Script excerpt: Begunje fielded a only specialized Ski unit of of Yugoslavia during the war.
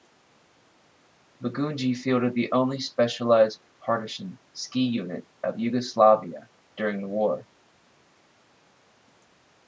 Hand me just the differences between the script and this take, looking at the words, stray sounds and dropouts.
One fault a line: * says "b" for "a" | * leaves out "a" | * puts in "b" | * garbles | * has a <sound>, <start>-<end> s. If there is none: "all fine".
* says "the" for "a"
* puts in "Partisan"
* leaves out "of"